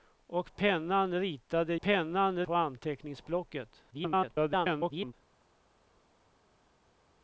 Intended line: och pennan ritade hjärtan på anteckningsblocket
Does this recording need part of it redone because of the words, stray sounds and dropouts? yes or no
yes